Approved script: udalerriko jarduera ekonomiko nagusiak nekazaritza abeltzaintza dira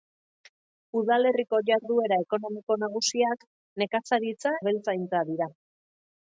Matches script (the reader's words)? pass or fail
pass